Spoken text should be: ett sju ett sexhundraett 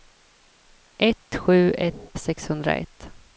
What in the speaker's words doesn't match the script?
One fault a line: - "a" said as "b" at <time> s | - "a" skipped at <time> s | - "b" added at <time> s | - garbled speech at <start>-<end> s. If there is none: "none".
none